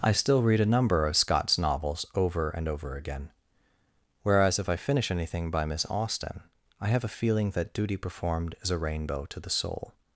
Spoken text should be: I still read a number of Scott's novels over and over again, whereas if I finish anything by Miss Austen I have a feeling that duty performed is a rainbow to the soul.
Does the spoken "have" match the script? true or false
true